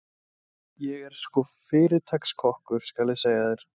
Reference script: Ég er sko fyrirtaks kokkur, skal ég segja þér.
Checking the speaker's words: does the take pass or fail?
pass